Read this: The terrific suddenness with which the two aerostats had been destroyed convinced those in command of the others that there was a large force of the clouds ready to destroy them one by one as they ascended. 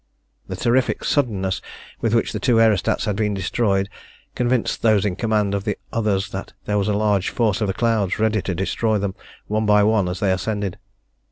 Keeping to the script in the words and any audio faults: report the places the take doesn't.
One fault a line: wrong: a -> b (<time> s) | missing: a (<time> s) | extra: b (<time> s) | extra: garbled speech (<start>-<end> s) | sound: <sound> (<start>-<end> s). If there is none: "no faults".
no faults